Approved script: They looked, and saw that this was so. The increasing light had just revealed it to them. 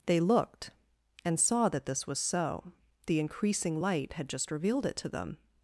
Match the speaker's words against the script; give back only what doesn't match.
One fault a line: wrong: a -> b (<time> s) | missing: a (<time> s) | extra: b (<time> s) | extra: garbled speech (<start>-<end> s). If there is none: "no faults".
no faults